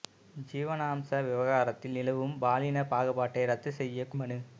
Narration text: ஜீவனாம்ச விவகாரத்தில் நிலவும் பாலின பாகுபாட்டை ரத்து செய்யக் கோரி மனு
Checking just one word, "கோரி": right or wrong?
wrong